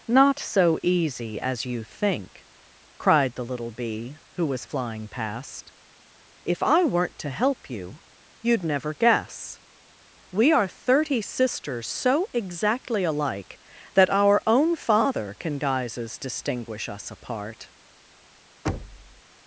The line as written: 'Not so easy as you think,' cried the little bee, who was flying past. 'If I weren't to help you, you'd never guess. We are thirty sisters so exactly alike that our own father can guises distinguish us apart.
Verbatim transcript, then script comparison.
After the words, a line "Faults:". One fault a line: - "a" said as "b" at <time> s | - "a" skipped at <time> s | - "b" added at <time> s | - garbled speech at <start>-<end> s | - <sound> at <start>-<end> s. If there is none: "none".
'Not so easy as you think,' cried the little bee, who was flying past. 'If I weren't to help you, you'd never guess. We are thirty sisters so exactly alike that our own father can guises distinguish us apart.
Faults:
- thud at 18.7-19.2 s